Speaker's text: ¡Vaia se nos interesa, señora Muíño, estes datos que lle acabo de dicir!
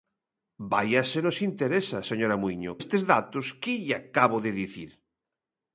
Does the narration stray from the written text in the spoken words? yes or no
no